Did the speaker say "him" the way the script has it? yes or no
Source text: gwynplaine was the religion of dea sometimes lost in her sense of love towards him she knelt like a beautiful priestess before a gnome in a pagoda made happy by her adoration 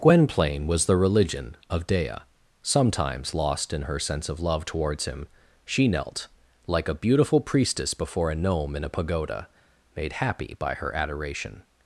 yes